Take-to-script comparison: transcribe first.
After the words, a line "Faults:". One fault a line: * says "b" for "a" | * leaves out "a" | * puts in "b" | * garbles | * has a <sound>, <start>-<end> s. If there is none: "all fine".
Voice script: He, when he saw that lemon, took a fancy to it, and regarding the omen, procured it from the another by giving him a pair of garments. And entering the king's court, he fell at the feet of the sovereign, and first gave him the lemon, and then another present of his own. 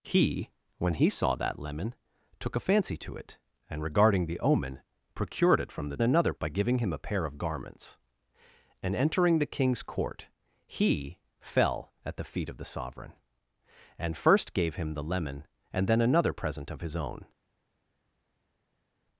He, when he saw that lemon, took a fancy to it, and regarding the omen, procured it from the another by giving him a pair of garments. And entering the king's court, he fell at the feet of the sovereign, and first gave him the lemon, and then another present of his own.
Faults:
all fine